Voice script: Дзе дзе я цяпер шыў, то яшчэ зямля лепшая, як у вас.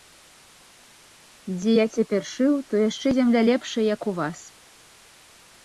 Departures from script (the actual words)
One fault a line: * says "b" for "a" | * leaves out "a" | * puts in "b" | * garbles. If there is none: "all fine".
* leaves out "дзе"